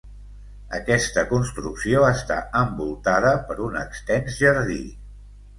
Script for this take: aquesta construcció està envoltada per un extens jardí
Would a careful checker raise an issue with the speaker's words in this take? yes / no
no